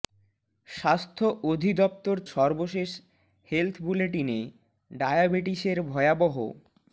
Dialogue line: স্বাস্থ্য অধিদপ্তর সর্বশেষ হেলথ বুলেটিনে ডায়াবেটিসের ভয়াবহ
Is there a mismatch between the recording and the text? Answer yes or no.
no